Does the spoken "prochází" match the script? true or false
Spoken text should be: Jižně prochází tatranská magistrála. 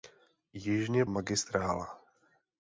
false